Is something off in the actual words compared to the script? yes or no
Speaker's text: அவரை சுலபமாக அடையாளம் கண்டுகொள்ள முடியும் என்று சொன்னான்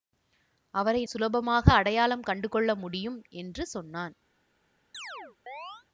no